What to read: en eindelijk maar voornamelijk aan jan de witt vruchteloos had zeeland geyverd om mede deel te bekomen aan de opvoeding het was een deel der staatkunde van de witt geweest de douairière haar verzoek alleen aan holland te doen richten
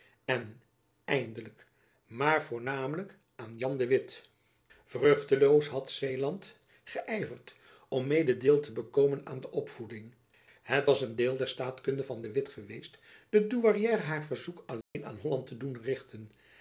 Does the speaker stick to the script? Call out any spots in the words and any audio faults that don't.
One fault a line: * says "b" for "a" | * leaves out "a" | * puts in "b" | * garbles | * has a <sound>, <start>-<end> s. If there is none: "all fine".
* has a dropout, 14.8-15.0 s